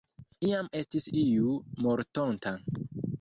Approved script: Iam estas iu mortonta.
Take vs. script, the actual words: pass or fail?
fail